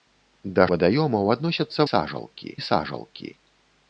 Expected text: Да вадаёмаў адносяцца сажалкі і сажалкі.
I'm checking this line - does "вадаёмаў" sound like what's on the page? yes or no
yes